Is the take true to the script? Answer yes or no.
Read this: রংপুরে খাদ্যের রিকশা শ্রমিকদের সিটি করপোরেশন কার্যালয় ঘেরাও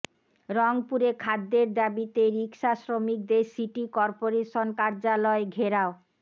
no